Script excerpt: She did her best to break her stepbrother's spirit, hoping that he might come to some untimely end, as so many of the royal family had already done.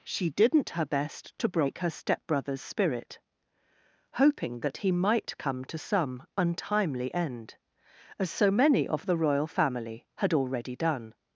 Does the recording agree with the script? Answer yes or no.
no